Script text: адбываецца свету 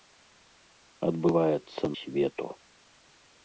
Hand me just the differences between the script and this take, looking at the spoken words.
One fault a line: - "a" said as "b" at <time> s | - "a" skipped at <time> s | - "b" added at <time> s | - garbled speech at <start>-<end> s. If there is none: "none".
none